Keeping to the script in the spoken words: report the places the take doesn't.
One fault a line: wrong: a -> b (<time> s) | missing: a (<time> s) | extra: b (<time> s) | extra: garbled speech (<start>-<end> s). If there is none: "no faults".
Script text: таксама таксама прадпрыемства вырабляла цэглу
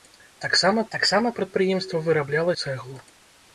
no faults